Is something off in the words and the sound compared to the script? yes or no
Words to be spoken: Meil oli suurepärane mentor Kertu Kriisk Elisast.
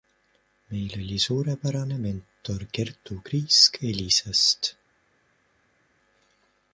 no